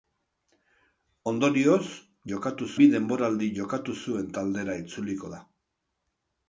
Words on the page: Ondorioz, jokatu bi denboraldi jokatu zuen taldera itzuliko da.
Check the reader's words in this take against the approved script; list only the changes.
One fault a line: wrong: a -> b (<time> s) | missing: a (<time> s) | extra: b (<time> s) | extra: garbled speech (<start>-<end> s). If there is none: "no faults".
no faults